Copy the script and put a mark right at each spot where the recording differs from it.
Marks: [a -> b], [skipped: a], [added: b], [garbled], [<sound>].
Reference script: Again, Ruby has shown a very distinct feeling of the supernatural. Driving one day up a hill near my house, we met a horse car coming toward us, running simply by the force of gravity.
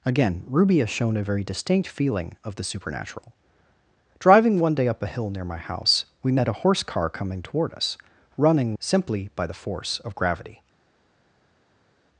Again, Ruby has shown a very distinct feeling of the supernatural. Driving one day up a hill near my house, we met a horse car coming toward us, running simply by the force of gravity.